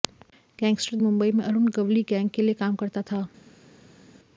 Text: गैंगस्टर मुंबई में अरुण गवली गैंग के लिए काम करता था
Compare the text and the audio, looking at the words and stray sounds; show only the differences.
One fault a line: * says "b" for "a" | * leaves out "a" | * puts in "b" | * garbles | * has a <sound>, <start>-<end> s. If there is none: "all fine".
all fine